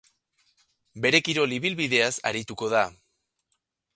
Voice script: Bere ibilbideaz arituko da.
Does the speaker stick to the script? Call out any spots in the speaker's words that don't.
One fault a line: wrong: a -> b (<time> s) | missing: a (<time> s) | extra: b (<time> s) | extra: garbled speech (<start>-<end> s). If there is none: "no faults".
extra: kirol (1.3 s)